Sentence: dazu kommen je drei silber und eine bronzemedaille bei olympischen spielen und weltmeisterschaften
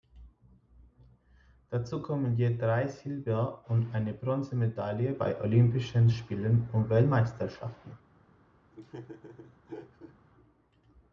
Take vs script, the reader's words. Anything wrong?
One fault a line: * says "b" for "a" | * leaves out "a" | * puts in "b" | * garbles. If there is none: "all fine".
all fine